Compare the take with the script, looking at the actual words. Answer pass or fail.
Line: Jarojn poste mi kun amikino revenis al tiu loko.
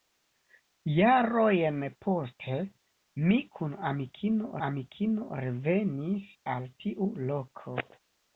fail